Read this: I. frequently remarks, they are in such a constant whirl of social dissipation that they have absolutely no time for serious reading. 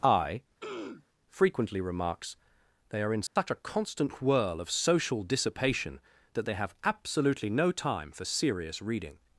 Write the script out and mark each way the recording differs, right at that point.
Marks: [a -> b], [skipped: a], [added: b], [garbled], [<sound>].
I. [throat clearing] frequently remarks, they are in such [dropout] a constant whirl of social dissipation that they have absolutely no time for serious reading.